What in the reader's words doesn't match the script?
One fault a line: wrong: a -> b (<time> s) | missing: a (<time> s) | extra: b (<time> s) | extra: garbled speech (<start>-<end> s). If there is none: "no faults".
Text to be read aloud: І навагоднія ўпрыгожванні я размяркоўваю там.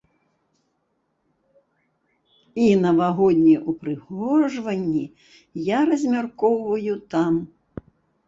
no faults